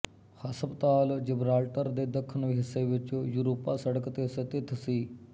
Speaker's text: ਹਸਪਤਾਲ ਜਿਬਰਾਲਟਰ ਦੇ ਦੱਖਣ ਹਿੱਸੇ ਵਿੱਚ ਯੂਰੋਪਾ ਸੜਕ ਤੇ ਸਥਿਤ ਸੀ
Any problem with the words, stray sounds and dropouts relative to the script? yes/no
no